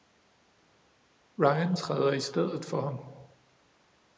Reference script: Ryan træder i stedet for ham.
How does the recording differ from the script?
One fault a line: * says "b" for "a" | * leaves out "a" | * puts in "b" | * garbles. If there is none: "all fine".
all fine